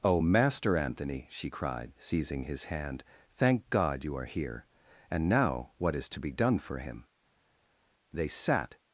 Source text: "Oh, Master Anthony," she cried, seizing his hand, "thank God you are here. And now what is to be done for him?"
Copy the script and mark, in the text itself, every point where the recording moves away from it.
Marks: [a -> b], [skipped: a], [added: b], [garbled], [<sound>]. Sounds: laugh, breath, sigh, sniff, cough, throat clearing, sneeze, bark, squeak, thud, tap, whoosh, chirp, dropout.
"Oh, Master Anthony," she cried, seizing his hand, "thank God you are here. And now what is to be done for him?" [added: They sat]